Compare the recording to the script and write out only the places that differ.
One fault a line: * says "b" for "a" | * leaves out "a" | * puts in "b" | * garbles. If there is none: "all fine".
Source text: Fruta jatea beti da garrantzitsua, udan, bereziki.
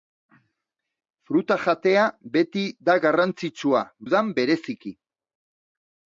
all fine